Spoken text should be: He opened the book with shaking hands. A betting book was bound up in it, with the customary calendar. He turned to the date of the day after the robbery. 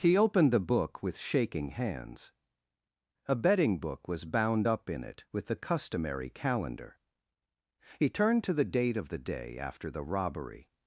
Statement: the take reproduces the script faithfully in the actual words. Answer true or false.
true